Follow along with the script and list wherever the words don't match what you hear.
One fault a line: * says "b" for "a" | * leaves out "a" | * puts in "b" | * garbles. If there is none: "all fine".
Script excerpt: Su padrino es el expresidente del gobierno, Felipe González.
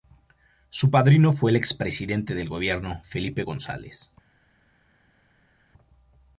* says "fue" for "es"